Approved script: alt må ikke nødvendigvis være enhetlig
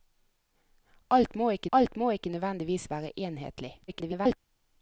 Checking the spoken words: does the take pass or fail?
fail